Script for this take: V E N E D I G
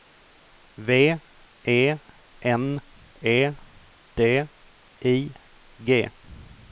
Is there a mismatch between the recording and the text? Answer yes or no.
no